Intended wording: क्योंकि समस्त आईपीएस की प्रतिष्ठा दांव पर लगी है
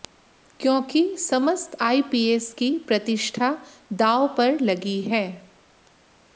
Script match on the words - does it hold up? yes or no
yes